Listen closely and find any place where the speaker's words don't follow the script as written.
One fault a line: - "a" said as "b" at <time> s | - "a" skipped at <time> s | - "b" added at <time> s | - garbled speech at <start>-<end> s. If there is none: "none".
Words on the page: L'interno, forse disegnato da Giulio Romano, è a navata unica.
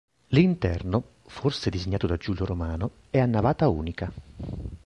none